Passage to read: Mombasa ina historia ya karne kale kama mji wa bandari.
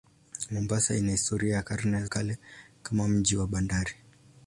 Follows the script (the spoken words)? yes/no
yes